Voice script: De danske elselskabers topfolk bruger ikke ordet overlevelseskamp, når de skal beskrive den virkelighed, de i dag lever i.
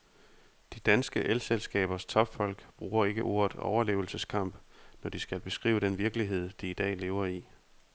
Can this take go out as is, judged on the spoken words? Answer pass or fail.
pass